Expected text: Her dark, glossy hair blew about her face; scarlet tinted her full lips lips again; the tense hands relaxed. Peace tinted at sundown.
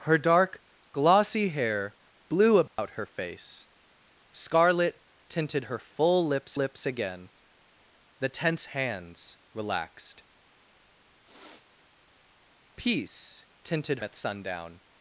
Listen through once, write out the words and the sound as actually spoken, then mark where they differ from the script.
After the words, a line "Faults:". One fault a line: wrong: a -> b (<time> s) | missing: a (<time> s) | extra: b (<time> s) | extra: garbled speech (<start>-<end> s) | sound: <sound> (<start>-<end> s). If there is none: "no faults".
Her dark, glossy hair blew about her face; scarlet tinted her full lips lips again; the tense hands relaxed. Peace tinted at sundown.
Faults:
sound: dropout (2.7-2.8 s)
sound: sniff (11.2-11.7 s)